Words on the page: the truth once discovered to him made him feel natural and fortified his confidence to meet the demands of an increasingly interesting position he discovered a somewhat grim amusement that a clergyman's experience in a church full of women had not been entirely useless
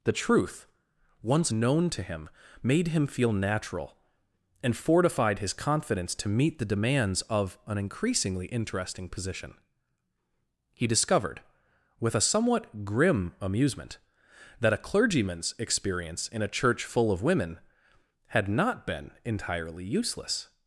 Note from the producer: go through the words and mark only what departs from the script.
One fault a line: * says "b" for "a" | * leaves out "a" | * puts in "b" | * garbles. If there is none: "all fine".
* says "known" for "discovered"
* puts in "with"